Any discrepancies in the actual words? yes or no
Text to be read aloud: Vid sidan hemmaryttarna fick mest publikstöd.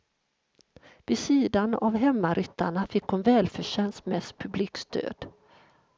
yes